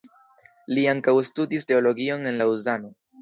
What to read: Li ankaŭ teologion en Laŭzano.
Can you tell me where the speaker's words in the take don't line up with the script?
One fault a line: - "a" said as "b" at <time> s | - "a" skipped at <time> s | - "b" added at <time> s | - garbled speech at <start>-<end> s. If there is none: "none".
- "studis" added at 1.3 s